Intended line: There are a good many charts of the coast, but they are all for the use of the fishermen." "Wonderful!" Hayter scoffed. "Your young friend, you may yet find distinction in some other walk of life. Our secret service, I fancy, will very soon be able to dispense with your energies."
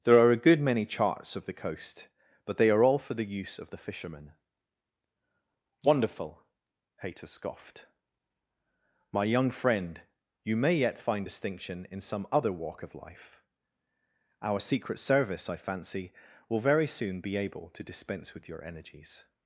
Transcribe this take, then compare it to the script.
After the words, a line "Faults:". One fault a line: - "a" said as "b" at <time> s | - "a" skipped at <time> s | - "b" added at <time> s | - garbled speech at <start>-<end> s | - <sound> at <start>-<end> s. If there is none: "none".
There are a good many charts of the coast, but they are all for the use of the fishermen." "Wonderful!" Hayter scoffed. "My young friend, you may yet find distinction in some other walk of life. Our secret service, I fancy, will very soon be able to dispense with your energies."
Faults:
- "Your" said as "My" at 9.1 s